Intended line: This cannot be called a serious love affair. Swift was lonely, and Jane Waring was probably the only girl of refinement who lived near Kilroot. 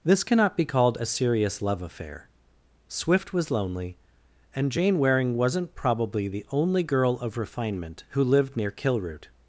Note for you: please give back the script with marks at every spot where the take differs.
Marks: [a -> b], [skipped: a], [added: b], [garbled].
This cannot be called a serious love affair. Swift was lonely, and Jane Waring [was -> wasn't] probably the only girl of refinement who lived near Kilroot.